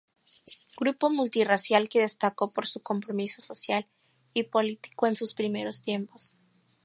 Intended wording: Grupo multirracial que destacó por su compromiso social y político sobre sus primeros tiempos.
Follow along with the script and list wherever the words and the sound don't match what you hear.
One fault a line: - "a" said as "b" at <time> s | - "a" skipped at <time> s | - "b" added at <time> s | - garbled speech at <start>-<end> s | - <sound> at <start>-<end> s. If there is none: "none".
- "sobre" said as "en" at 5.1 s